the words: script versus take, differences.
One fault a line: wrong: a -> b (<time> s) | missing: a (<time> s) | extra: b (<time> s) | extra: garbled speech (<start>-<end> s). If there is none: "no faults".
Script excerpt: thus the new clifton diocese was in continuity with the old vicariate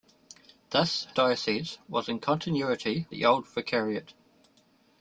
missing: the new clifton (1.1 s)
missing: with (3.1 s)